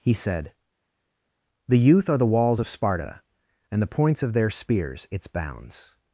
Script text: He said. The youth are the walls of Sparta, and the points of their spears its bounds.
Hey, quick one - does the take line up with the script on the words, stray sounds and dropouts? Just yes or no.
yes